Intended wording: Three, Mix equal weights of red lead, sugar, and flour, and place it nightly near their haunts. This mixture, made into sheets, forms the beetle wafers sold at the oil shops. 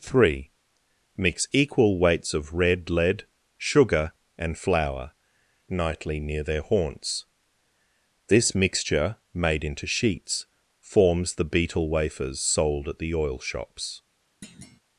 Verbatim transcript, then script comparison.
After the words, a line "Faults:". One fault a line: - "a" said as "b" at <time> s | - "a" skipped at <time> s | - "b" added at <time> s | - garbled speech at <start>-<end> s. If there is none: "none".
Three, Mix equal weights of red lead, sugar, and flour, nightly near their haunts. This mixture, made into sheets, forms the beetle wafers sold at the oil shops.
Faults:
- "and place it" skipped at 5.1 s